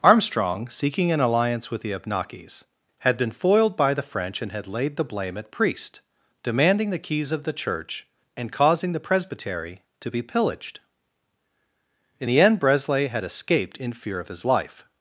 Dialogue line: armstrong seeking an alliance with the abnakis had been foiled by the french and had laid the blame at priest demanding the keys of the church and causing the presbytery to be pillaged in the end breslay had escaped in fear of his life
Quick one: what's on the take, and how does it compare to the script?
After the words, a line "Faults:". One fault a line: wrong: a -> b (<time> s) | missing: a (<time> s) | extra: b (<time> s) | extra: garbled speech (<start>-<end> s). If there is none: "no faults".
armstrong seeking an alliance with the abnakis had been foiled by the french and had laid the blame at priest demanding the keys of the church and causing the presbytery to be pillaged in the end breslay had escaped in fear of his life
Faults:
no faults